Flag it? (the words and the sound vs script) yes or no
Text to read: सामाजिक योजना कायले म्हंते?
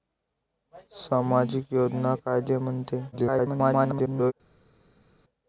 yes